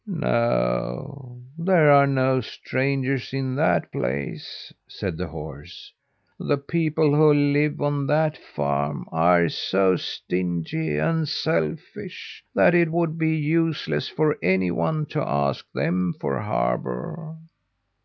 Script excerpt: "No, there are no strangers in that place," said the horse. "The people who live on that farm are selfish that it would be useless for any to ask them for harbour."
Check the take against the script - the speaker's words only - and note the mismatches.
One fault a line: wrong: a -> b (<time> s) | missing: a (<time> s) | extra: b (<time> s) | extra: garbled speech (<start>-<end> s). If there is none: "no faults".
extra: so stingy and (9.5 s)
extra: one (14.7 s)